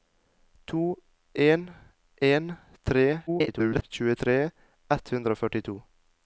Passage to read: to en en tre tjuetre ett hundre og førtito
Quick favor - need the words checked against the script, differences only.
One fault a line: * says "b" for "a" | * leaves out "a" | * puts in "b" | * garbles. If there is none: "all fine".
* garbles